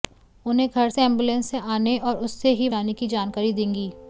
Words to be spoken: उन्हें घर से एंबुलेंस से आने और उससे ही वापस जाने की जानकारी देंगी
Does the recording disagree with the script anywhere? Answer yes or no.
yes